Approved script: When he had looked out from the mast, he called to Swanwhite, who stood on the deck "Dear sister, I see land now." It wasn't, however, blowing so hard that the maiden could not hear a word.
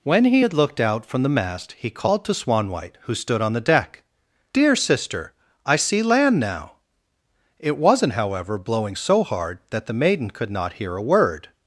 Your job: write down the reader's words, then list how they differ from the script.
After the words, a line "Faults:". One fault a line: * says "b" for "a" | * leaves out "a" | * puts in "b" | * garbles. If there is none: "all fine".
When he had looked out from the mast, he called to Swanwhite, who stood on the deck "Dear sister, I see land now." It wasn't, however, blowing so hard that the maiden could not hear a word.
Faults:
all fine